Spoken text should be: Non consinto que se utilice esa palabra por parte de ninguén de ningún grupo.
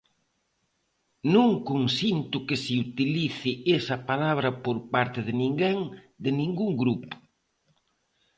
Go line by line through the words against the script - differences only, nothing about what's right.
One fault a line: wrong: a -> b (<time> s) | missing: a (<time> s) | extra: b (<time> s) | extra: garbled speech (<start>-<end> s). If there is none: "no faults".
no faults